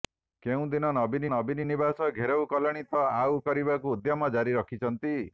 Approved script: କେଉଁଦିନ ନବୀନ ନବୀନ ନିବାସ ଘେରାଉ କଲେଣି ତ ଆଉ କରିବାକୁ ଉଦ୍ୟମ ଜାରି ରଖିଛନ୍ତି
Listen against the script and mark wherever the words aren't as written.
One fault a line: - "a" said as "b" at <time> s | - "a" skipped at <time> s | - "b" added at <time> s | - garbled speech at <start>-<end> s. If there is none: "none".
none